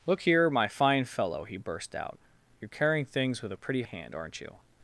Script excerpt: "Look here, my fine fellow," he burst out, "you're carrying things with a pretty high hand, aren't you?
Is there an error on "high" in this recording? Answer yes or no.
yes